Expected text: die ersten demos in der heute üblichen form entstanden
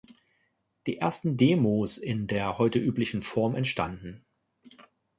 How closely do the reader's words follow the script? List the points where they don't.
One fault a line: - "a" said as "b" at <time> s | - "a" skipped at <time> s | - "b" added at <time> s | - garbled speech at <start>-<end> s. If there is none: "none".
none